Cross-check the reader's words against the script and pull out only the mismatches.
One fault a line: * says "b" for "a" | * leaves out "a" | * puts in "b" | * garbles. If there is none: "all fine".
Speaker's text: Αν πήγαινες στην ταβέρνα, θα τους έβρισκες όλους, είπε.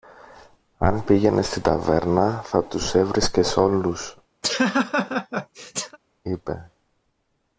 all fine